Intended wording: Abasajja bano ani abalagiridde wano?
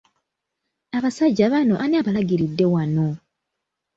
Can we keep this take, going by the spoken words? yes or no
yes